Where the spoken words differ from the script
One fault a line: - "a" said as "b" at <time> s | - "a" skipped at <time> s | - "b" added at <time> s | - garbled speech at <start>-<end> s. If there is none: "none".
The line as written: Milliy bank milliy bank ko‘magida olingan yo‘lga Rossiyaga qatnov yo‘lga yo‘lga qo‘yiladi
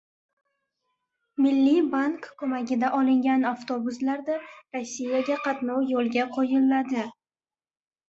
- "milliy bank" skipped at 2.2 s
- "yo‘lga" said as "avtobuslarda" at 3.5 s
- "yo‘lga" skipped at 6.3 s